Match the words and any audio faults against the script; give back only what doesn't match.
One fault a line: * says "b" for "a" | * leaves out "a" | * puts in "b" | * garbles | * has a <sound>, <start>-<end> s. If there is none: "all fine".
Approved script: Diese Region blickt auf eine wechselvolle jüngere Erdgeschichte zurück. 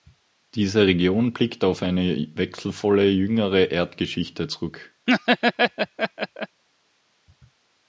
* has a laugh, 5.1-6.6 s